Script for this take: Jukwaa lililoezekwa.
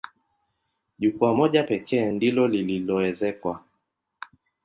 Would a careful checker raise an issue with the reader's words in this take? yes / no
yes